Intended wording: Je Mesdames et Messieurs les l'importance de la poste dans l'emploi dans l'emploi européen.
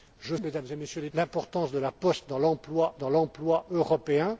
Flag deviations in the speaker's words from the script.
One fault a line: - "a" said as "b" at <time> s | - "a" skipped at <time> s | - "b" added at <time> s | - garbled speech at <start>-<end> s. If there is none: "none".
none